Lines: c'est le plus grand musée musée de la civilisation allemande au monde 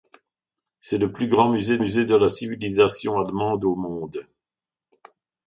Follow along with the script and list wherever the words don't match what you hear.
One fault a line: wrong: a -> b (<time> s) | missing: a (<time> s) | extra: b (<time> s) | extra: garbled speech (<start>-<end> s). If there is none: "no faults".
no faults